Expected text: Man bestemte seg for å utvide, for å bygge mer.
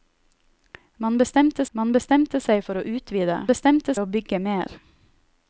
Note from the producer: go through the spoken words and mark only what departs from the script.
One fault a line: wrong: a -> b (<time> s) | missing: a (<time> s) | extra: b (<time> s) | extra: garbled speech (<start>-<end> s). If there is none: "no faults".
extra: man bestemte (1.8 s)
wrong: for -> bestemte (3.5 s)